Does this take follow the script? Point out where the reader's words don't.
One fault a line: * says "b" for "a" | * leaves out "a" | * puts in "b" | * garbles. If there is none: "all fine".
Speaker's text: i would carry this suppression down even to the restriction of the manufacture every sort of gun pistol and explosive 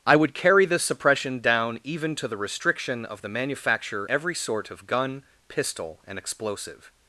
all fine